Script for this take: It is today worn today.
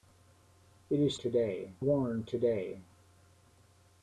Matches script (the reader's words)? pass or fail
pass